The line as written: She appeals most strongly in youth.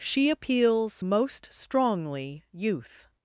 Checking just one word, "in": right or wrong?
wrong